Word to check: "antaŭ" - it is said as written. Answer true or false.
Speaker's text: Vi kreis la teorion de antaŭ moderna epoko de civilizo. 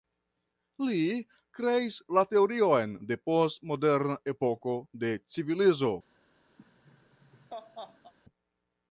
false